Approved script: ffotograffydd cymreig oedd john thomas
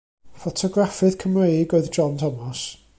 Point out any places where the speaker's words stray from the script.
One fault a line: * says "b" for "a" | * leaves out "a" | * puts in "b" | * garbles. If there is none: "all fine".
all fine